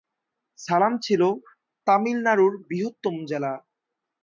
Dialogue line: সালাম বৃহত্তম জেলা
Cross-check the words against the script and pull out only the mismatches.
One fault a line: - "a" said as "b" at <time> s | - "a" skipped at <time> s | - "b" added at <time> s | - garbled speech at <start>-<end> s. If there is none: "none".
- "ছিল তামিলনাড়ুর" added at 1.0 s